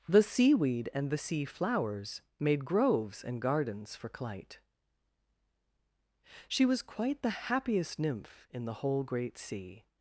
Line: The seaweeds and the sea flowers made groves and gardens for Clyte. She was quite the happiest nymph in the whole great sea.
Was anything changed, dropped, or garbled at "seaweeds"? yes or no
yes